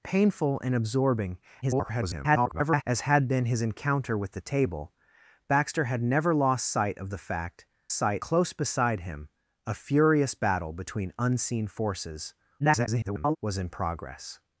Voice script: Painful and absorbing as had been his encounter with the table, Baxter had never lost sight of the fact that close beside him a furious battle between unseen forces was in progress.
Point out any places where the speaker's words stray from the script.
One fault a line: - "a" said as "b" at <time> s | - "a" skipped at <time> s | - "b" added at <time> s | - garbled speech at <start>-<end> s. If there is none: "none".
- garbled speech at 1.6-2.8 s
- "that" said as "sight" at 7.9 s
- garbled speech at 12.6-13.4 s